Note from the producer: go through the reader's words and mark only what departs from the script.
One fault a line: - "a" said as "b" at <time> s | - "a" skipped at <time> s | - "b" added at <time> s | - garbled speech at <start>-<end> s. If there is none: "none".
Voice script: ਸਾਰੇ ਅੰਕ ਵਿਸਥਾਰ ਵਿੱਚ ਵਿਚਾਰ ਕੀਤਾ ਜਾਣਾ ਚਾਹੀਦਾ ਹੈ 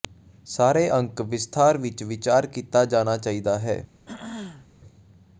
none